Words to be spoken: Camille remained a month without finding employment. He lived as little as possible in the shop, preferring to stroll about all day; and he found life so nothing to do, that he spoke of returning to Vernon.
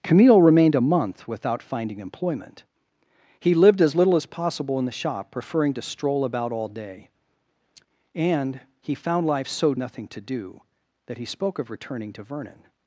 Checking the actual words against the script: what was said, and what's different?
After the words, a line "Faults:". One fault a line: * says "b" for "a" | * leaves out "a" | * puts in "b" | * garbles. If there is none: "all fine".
Camille remained a month without finding employment. He lived as little as possible in the shop, preferring to stroll about all day; and he found life so nothing to do, that he spoke of returning to Vernon.
Faults:
all fine